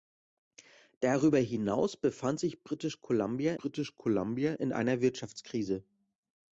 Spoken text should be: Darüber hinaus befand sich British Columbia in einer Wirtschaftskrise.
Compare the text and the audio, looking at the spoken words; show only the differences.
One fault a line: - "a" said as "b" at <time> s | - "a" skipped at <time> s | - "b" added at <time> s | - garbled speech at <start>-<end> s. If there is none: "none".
- "British Columbia" added at 3.6 s